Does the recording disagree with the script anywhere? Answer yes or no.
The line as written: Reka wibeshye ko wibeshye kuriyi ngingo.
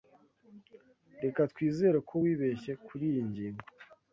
yes